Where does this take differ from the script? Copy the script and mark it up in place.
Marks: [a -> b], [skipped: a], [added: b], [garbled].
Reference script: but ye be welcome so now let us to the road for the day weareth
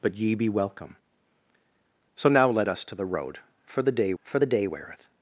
but ye be welcome so now let us to the road for the day [added: for the day] weareth